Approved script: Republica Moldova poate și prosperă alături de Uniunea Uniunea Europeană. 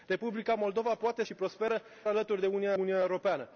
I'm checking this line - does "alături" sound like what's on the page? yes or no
yes